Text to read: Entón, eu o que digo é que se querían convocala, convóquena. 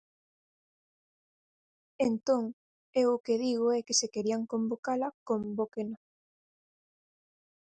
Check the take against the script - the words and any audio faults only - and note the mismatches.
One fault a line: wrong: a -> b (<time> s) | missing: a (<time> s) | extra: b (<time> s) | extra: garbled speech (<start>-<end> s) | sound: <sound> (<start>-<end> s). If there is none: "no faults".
no faults